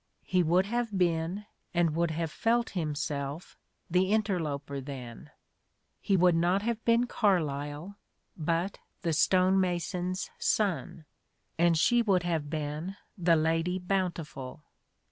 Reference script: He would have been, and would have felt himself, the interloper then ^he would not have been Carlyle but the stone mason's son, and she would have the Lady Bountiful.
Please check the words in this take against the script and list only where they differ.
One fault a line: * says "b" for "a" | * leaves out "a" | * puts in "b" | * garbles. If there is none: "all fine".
* puts in "been"